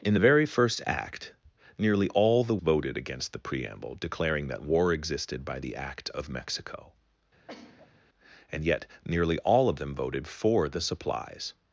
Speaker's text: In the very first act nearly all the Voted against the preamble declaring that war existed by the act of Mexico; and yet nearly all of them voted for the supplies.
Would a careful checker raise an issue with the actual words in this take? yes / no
no